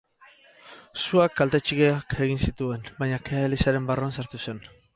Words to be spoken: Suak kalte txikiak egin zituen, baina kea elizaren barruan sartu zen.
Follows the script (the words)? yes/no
yes